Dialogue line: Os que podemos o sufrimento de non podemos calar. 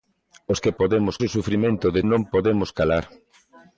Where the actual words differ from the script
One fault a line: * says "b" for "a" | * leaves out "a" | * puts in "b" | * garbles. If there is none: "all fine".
all fine